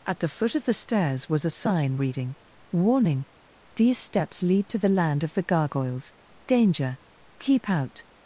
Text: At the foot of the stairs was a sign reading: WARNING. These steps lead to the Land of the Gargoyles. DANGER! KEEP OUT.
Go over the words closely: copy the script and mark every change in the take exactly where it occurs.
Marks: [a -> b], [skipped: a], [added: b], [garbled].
At the foot of the stairs was a sign reading: WARNING. These steps lead to the Land of the Gargoyles. DANGER! KEEP OUT.